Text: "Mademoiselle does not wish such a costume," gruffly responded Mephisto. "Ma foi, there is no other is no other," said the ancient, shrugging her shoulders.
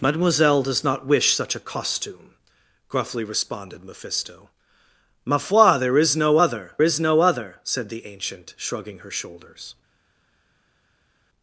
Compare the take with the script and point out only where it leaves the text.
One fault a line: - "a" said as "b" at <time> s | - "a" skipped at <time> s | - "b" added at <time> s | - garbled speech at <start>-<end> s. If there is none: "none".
none